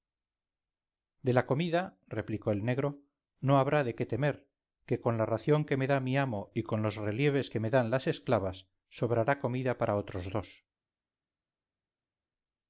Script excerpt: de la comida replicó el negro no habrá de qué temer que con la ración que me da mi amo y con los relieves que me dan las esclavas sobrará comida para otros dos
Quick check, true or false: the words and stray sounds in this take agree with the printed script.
true